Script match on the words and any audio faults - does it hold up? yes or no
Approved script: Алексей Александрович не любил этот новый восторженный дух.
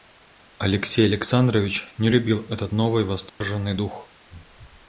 no